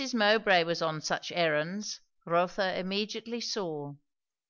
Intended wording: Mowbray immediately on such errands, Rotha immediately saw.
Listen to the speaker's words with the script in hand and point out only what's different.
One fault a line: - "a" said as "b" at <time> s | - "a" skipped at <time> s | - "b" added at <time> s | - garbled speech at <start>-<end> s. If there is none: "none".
- "immediately" said as "was" at 0.6 s